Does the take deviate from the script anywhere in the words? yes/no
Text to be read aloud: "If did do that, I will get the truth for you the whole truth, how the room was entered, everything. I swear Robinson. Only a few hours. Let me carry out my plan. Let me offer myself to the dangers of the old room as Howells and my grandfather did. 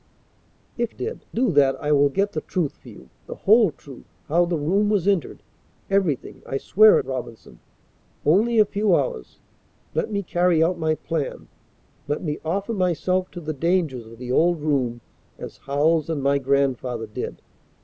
no